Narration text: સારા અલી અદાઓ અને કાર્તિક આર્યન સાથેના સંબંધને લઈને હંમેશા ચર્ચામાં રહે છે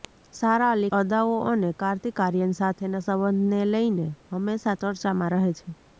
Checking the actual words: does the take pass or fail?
pass